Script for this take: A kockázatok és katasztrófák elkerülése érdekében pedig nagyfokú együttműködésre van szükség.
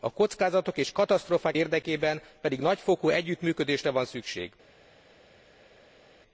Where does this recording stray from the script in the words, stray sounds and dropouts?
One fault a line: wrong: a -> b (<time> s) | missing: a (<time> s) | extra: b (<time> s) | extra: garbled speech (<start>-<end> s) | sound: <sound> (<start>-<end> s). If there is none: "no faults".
missing: elkerülése (1.6 s)